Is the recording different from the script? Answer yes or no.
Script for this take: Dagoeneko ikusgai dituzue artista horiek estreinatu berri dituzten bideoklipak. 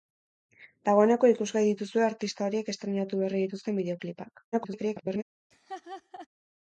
yes